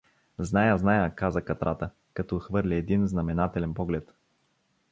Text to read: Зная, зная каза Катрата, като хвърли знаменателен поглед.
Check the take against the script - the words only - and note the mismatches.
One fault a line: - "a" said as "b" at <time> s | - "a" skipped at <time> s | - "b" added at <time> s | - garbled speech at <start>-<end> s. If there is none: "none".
- "един" added at 2.8 s